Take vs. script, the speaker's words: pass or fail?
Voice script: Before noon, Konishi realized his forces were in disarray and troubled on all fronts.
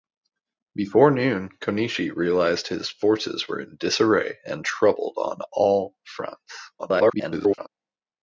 fail